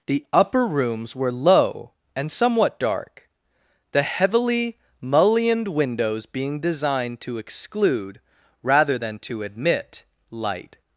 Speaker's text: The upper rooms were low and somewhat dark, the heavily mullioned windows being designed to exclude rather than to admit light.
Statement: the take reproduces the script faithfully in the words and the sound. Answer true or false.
true